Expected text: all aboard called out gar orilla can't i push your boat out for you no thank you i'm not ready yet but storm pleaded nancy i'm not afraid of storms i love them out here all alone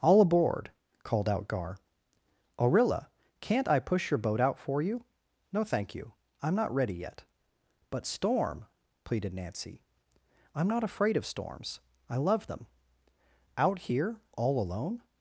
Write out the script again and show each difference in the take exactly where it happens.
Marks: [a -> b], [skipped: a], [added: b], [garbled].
all aboard called out gar orilla can't i push your boat out for you no thank you i'm not ready yet but storm pleaded nancy i'm not afraid of storms i love them out here all alone